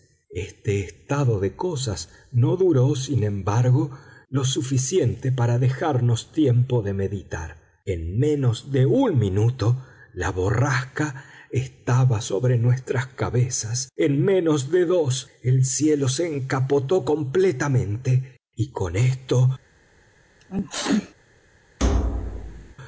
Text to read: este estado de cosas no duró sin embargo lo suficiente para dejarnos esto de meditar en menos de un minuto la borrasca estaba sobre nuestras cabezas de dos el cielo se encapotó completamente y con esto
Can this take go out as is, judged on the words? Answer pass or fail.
fail